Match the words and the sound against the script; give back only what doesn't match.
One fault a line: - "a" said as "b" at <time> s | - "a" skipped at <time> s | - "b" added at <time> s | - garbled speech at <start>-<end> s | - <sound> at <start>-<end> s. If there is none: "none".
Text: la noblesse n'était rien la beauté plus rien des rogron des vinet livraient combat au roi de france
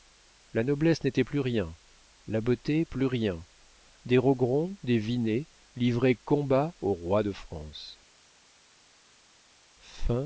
- "plus" added at 1.2 s